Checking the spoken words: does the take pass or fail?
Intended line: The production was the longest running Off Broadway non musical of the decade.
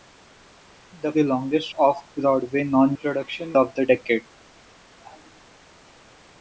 fail